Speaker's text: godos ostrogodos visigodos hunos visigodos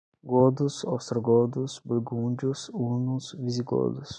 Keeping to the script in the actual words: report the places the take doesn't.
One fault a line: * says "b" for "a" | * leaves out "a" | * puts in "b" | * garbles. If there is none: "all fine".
* says "burgúndios" for "visigodos"